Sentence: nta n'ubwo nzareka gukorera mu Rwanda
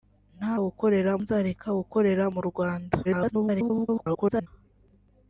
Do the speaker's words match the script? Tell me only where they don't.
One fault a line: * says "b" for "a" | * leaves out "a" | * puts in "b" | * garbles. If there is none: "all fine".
* says "gukorera" for "n'ubwo"
* garbles